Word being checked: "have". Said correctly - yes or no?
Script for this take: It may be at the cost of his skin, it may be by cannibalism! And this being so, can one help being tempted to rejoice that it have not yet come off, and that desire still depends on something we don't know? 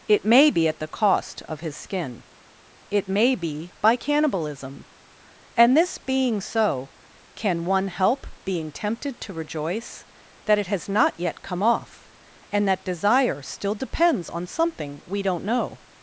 no